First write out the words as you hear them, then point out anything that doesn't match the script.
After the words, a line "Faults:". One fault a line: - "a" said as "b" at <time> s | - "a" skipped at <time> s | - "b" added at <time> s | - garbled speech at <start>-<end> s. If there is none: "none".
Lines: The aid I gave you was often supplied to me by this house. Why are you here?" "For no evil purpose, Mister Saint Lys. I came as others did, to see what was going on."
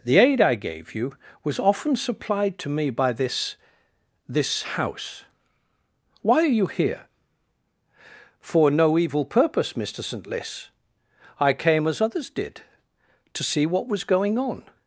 The aid I gave you was often supplied to me by this this house. Why are you here?" "For no evil purpose, Mister Saint Lys. I came as others did, to see what was going on."
Faults:
- "this" added at 4.3 s